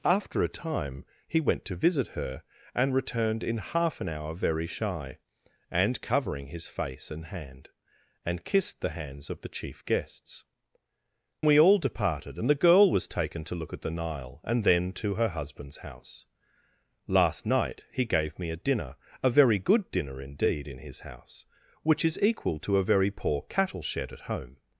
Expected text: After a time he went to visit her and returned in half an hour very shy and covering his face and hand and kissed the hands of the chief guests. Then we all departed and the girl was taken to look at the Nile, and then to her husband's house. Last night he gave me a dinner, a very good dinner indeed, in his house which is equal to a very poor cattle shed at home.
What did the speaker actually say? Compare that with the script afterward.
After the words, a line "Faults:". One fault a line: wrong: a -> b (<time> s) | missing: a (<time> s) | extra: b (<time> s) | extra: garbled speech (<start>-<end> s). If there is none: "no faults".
After a time he went to visit her and returned in half an hour very shy and covering his face and hand and kissed the hands of the chief guests. We all departed and the girl was taken to look at the Nile, and then to her husband's house. Last night he gave me a dinner, a very good dinner indeed, in his house which is equal to a very poor cattle shed at home.
Faults:
missing: Then (10.4 s)